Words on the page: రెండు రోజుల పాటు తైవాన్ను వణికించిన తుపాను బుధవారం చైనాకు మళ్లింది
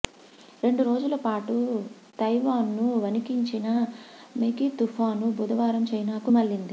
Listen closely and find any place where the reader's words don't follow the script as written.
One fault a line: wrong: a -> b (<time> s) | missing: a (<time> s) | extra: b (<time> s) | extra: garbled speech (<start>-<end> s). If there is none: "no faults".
extra: మెగీ (4.4 s)